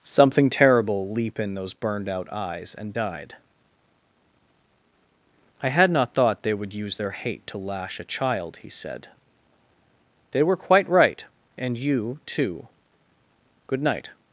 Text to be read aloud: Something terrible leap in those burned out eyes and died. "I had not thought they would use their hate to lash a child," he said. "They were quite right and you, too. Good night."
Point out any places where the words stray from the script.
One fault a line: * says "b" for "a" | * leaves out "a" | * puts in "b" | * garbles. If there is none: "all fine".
all fine